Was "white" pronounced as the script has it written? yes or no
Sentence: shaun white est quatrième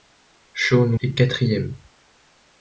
no